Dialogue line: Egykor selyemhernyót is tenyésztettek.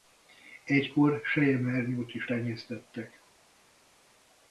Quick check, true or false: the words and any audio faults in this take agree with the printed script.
true